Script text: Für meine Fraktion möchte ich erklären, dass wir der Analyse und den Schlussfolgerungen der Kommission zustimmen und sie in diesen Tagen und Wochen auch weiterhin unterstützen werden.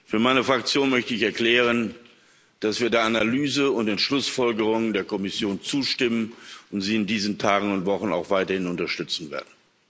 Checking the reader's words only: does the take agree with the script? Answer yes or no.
yes